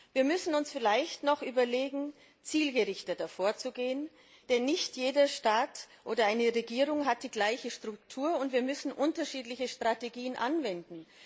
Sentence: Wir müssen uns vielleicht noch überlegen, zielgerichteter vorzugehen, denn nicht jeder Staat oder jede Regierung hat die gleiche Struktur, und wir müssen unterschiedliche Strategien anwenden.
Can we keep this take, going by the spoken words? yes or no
yes